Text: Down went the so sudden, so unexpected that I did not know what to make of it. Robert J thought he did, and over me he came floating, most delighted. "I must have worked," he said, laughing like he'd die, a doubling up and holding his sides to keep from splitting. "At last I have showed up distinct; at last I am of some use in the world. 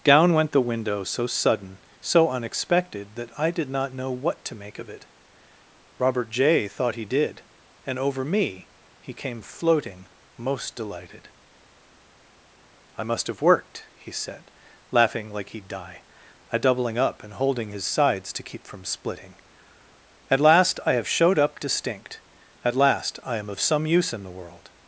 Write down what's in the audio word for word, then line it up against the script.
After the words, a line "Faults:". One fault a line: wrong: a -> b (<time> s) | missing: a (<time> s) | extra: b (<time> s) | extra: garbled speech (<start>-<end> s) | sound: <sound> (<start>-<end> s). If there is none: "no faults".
Down went the window so sudden, so unexpected that I did not know what to make of it. Robert J thought he did, and over me he came floating, most delighted. "I must have worked," he said, laughing like he'd die, a doubling up and holding his sides to keep from splitting. "At last I have showed up distinct; at last I am of some use in the world.
Faults:
extra: window (0.6 s)